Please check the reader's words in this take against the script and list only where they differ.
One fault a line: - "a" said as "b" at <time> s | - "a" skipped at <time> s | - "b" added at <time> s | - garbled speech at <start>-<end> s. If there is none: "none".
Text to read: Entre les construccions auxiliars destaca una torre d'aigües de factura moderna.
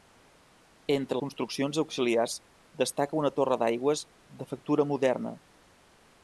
- "les" skipped at 1.2 s